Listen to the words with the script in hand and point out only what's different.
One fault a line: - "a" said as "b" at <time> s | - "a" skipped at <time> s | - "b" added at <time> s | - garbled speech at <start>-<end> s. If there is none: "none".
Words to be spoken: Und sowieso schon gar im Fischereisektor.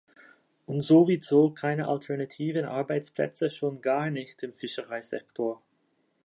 - "keine alternativen Arbeitsplätze" added at 1.5 s
- "nicht" added at 4.1 s